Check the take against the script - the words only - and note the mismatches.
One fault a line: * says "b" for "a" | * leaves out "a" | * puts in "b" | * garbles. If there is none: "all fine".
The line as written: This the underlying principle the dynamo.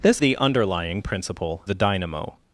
all fine